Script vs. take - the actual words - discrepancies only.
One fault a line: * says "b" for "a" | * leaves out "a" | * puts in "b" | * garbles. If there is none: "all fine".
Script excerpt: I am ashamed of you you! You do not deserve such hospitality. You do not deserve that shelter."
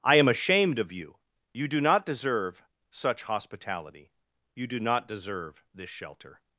* leaves out "You"
* says "this" for "that"